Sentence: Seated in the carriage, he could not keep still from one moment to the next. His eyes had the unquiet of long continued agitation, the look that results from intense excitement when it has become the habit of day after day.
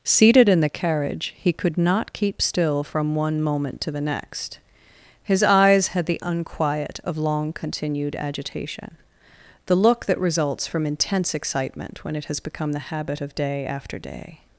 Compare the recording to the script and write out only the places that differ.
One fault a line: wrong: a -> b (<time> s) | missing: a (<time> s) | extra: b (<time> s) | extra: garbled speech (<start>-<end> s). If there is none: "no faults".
no faults